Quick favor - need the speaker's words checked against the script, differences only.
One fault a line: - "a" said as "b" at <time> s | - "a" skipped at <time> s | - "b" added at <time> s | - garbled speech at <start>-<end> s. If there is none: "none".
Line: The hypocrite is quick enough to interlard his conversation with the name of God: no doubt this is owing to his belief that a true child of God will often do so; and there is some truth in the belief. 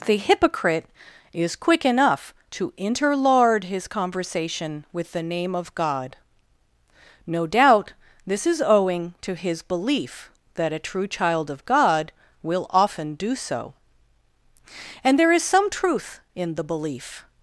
none